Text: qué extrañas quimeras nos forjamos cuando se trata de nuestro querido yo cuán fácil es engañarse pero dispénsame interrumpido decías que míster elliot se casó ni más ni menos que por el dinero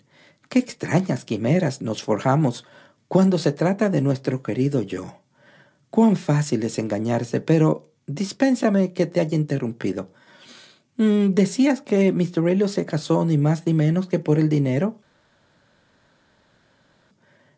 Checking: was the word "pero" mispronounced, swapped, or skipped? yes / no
no